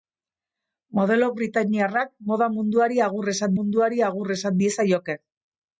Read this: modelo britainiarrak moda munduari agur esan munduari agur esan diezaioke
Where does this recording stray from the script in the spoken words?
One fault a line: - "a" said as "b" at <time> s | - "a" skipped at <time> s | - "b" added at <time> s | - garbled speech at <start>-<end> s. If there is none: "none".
none